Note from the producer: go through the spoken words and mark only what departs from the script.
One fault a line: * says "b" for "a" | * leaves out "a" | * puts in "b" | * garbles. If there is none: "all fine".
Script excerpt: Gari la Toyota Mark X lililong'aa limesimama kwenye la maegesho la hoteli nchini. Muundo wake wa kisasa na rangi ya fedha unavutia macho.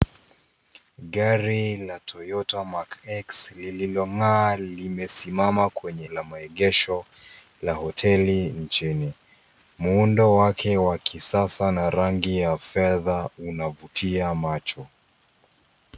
all fine